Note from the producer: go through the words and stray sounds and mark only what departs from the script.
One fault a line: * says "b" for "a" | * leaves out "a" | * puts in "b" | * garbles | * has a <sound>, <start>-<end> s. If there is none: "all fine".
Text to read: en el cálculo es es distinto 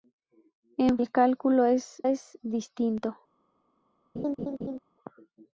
* has a laugh, 4.2-4.8 s